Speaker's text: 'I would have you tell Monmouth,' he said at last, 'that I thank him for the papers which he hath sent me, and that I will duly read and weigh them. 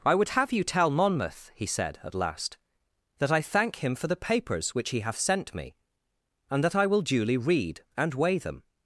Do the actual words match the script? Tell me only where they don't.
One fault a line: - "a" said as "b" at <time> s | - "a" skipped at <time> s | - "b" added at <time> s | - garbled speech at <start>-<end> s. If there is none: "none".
none